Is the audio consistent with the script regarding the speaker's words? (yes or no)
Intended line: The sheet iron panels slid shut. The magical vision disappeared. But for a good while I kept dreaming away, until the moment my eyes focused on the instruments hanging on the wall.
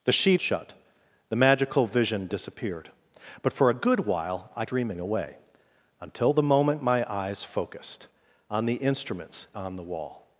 no